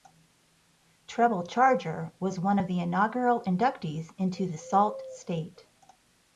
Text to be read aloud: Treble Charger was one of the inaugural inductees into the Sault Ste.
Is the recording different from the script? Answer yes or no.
no